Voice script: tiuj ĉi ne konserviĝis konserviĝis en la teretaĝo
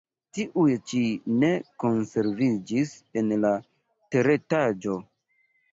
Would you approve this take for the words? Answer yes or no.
no